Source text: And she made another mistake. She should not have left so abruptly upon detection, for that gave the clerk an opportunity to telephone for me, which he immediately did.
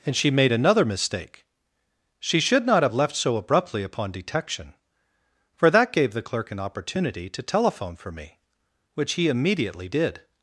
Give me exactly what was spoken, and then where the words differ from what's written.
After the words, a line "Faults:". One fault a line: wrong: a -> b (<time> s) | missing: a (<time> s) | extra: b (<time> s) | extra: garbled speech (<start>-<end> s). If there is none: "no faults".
And she made another mistake. She should not have left so abruptly upon detection, for that gave the clerk an opportunity to telephone for me, which he immediately did.
Faults:
no faults